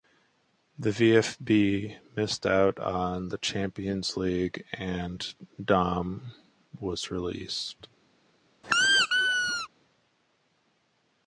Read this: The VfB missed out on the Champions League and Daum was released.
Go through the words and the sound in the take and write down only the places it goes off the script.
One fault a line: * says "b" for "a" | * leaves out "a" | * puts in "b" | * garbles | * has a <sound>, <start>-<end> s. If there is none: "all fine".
* has a squeak, 8.6-9.7 s